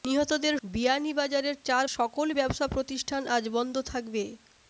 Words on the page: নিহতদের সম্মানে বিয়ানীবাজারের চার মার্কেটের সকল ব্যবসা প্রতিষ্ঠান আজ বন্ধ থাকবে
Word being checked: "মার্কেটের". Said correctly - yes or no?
no